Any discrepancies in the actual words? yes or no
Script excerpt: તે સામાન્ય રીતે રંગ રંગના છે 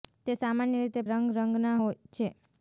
no